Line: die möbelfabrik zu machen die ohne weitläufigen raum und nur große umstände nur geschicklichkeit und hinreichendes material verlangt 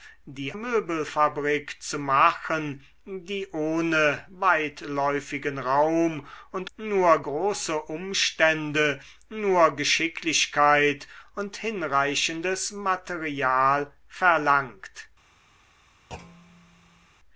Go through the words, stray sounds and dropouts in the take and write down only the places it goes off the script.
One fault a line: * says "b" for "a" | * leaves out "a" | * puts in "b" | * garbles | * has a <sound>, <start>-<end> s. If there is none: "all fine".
* has a thud, 16.1-17.1 s